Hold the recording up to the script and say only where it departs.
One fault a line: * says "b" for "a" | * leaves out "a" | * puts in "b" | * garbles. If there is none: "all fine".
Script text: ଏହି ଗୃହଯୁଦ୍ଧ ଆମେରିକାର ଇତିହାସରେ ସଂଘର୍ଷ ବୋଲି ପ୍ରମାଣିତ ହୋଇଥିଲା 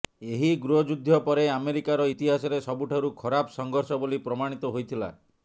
* puts in "ପରେ"
* puts in "ସବୁଠାରୁ ଖରାପ"